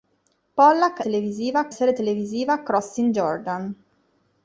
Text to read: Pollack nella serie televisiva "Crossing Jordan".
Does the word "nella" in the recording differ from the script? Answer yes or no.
yes